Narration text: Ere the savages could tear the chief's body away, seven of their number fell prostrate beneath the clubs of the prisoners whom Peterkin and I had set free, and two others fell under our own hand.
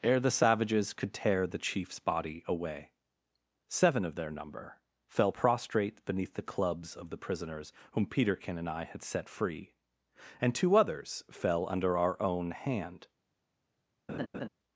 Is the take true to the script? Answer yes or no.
yes